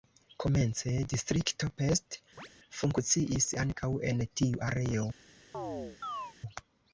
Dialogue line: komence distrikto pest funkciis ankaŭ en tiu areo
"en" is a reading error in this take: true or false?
false